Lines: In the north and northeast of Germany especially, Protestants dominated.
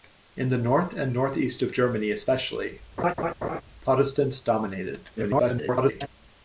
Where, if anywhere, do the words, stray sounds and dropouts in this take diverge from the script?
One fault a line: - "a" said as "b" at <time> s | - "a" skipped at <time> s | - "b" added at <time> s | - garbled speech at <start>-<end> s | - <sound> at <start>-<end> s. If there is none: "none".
- laugh at 3.0-3.6 s
- garbled speech at 5.2-6.1 s